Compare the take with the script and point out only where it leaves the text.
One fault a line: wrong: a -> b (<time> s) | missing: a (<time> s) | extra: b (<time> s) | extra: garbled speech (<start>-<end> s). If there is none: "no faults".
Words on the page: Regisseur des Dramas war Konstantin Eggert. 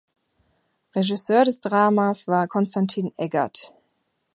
no faults